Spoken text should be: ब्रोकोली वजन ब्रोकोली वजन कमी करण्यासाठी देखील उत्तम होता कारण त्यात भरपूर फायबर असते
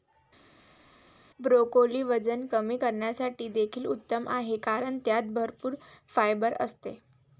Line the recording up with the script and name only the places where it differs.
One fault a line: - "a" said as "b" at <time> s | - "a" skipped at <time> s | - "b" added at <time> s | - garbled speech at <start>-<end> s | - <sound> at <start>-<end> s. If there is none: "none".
- "ब्रोकोली वजन" skipped at 2.4 s
- "होता" said as "आहे" at 4.3 s